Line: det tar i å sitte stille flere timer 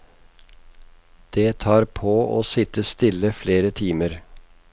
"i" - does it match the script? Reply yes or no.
no